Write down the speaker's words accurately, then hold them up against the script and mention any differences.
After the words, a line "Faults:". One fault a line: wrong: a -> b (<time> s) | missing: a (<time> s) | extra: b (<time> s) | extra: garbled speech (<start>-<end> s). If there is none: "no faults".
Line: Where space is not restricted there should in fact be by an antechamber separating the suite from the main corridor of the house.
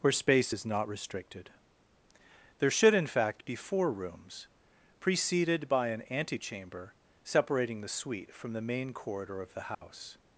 Where space is not restricted there should in fact be four rooms, preceded by an antechamber separating the suite from the main corridor of the house.
Faults:
extra: four rooms preceded (3.5 s)